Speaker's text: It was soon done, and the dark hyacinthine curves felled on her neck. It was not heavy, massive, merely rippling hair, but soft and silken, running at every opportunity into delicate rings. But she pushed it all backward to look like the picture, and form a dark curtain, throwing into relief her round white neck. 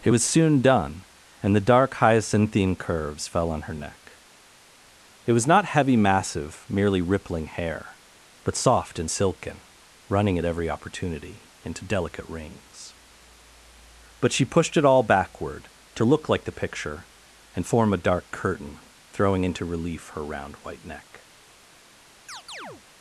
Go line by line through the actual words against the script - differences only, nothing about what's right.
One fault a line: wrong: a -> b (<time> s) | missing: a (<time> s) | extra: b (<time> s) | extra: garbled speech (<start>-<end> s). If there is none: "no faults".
wrong: felled -> fell (3.3 s)